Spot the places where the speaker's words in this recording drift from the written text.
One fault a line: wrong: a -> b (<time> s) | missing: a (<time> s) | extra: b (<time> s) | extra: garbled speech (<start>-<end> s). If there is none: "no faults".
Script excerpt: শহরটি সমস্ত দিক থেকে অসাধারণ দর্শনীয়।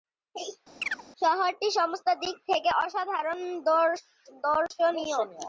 no faults